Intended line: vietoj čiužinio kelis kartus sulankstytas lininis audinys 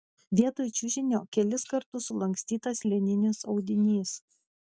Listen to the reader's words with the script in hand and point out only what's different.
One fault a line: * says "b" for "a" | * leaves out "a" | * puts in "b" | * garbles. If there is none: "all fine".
all fine